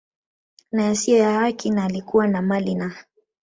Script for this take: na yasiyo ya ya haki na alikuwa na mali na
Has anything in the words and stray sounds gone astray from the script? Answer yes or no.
yes